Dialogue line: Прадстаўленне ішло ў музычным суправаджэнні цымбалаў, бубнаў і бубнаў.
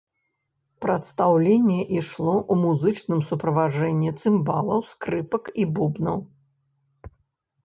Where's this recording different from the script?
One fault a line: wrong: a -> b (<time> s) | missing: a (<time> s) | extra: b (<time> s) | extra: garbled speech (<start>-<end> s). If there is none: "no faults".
wrong: бубнаў -> скрыпак (4.9 s)